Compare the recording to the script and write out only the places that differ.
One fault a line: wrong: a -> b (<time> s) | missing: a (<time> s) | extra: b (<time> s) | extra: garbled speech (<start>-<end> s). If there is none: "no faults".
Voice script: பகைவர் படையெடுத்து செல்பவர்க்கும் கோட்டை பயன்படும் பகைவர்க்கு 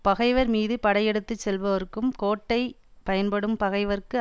extra: மீது (0.5 s)